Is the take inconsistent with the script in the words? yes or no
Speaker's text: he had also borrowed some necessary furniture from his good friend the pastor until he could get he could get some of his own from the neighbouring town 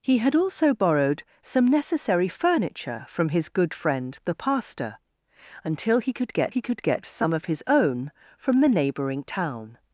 no